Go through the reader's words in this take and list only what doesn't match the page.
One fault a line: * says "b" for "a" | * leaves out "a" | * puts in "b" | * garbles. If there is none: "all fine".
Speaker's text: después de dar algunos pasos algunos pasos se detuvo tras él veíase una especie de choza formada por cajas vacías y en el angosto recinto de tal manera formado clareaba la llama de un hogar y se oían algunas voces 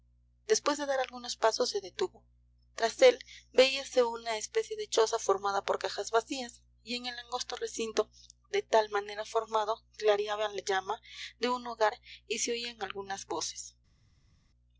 * leaves out "algunos pasos"